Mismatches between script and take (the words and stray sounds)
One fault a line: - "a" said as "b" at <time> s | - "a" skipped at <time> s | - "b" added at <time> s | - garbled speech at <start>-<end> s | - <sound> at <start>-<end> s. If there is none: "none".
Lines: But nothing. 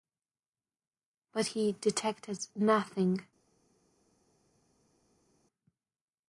- "he detected" added at 1.4 s